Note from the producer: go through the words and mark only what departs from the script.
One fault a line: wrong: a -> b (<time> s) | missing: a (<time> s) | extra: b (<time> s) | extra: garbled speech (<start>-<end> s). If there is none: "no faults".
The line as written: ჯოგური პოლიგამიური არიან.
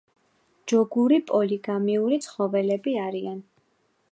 extra: ცხოველები (2.3 s)